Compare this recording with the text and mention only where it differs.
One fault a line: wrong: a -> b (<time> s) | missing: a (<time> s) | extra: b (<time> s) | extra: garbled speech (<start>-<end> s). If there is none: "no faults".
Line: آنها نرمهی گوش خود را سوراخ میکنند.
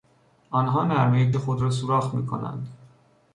missing: گوش (1.3 s)